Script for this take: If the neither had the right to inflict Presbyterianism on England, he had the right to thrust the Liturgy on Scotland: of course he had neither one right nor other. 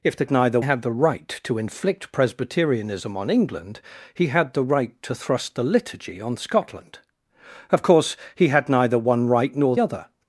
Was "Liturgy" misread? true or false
false